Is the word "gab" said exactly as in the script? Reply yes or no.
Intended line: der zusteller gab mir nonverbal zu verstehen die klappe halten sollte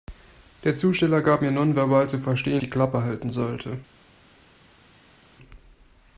yes